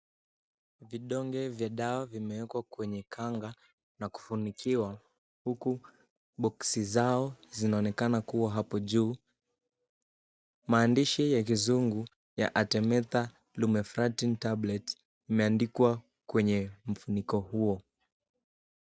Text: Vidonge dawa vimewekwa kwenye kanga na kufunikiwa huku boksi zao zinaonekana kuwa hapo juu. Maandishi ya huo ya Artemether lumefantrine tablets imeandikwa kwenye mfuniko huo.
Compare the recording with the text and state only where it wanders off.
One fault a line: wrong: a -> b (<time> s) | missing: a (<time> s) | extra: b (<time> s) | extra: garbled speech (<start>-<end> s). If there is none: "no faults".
extra: vya (1.5 s)
wrong: huo -> kizungu (11.4 s)